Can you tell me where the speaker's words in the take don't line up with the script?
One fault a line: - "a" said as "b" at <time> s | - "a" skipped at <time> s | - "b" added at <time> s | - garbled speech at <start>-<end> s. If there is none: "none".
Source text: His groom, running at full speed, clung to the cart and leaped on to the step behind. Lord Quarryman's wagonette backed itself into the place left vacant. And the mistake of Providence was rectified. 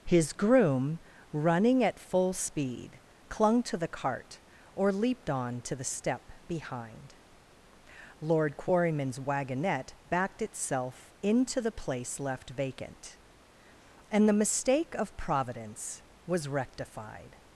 - "and" said as "or" at 4.8 s